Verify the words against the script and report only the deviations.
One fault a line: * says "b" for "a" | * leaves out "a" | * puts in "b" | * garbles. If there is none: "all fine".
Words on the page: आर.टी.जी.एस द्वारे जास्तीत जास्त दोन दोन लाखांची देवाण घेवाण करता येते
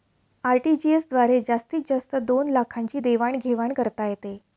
* leaves out "दोन"